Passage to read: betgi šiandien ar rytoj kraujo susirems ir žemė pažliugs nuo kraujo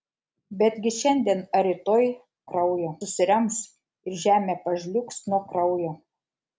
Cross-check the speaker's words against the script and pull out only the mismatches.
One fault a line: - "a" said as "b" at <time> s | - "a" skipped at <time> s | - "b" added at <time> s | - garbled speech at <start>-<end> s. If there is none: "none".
none